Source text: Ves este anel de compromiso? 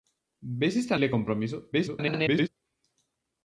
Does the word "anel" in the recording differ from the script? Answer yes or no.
yes